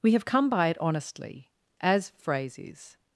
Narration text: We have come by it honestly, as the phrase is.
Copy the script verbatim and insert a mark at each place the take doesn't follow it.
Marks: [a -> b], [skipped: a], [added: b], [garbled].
We have come by it honestly, as [skipped: the] phrase is.